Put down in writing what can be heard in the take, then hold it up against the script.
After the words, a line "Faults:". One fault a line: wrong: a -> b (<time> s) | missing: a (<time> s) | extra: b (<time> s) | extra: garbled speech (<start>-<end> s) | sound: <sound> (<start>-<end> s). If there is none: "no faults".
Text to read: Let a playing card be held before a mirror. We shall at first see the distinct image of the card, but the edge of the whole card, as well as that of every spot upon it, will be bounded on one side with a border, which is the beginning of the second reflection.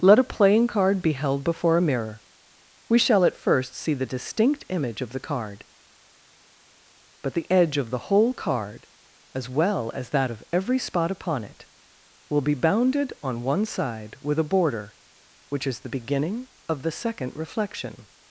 Let a playing card be held before a mirror. We shall at first see the distinct image of the card, but the edge of the whole card, as well as that of every spot upon it, will be bounded on one side with a border, which is the beginning of the second reflection.
Faults:
no faults